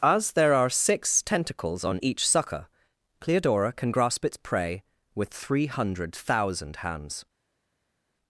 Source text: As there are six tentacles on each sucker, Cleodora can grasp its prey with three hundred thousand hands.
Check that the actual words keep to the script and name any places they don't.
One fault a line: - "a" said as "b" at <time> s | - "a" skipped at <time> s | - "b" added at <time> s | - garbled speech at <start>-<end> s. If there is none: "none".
none